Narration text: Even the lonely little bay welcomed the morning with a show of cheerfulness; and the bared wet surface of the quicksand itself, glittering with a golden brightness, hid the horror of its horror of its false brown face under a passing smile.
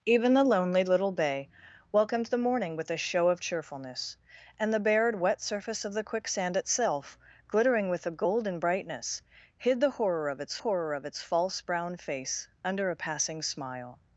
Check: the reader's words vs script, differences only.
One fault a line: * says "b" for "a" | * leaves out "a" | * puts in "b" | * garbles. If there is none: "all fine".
all fine